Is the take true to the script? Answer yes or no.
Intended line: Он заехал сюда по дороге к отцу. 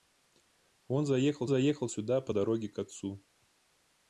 no